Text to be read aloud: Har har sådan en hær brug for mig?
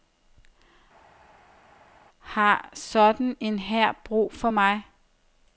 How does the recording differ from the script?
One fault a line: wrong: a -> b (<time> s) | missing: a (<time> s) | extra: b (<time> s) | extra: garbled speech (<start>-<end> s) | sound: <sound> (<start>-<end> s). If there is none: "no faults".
missing: har (2.7 s)